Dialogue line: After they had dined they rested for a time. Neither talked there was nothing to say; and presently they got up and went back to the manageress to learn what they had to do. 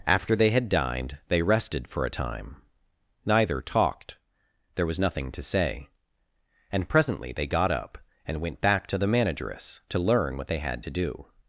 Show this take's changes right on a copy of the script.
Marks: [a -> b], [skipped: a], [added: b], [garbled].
After they had dined they rested for a time. Neither talked there was nothing to say; and presently they got up and went back to the manageress to learn what they had to do.